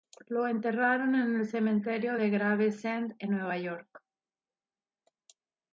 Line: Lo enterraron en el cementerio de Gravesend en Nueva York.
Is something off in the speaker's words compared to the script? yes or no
no